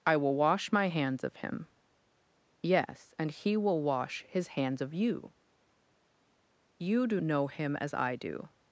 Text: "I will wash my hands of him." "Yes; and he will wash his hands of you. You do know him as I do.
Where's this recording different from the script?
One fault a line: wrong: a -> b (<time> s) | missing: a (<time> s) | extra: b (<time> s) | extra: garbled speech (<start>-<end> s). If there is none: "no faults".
no faults